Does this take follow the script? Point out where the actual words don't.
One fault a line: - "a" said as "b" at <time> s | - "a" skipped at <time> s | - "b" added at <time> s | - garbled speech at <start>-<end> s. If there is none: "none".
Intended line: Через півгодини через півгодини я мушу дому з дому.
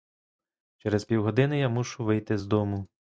- "через півгодини" skipped at 1.6 s
- "дому" said as "вийти" at 2.0 s